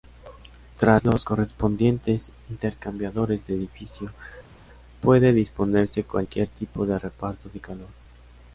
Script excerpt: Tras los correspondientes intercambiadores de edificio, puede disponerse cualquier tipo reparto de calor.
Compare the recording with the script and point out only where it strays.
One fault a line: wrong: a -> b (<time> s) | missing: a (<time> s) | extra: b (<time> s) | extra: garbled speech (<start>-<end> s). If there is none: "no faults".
extra: de (6.8 s)